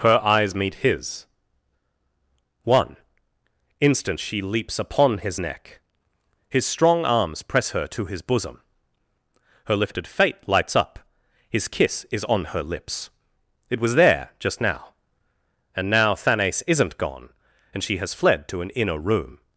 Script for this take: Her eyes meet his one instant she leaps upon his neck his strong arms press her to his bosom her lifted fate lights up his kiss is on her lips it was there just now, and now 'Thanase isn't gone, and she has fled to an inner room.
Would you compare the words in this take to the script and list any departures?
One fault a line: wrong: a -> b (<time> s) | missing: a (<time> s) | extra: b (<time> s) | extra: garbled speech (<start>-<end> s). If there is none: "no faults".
no faults